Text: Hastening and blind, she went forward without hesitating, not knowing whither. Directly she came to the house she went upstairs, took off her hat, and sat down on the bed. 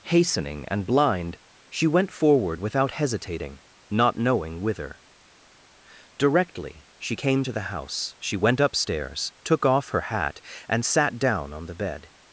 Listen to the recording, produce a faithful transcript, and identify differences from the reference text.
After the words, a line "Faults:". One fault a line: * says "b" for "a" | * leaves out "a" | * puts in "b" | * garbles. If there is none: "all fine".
Hastening and blind, she went forward without hesitating, not knowing whither. Directly she came to the house she went upstairs, took off her hat, and sat down on the bed.
Faults:
all fine